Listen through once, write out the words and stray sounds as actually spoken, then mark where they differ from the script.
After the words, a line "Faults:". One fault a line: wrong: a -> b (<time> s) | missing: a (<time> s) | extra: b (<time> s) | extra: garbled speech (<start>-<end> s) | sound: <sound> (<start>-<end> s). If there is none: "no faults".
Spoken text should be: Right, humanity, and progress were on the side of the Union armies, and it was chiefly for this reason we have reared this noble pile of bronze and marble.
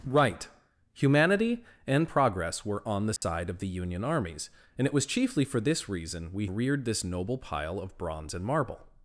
Right, humanity, and progress were on the side of the Union armies, and it was chiefly for this reason we reared this noble pile of bronze and marble.
Faults:
sound: dropout (3.2-3.2 s)
missing: have (6.5 s)